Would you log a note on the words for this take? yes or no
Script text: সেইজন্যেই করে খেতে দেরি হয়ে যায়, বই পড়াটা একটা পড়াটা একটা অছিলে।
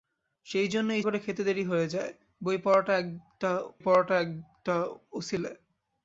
no